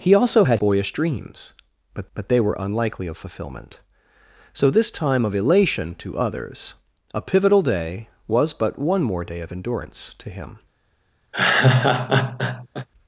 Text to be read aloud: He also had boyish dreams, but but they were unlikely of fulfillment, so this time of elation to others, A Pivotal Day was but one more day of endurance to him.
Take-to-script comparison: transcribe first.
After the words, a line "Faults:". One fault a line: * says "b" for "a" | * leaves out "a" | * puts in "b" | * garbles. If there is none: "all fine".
He also had boyish dreams, but but they were unlikely of fulfillment, so this time of elation to others, A Pivotal Day was but one more day of endurance to him.
Faults:
all fine